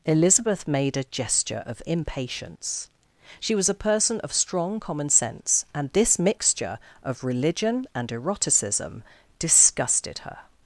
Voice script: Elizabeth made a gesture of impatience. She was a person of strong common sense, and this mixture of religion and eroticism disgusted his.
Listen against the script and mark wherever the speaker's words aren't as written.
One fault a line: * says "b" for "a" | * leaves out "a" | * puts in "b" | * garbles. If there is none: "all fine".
* says "her" for "his"